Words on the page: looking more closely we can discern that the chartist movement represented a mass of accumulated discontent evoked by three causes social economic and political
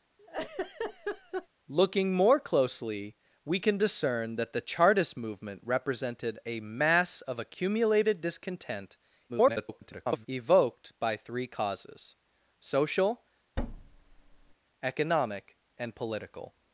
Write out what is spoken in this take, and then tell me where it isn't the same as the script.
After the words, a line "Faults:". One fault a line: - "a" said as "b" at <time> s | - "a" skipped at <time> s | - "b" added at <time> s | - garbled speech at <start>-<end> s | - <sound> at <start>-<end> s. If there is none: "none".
looking more closely we can discern that the chartist movement represented a mass of accumulated discontent [garbled] evoked by three causes social economic and political
Faults:
- laugh at 0.2-1.5 s
- garbled speech at 9.3-10.3 s
- thud at 13.6-14.5 s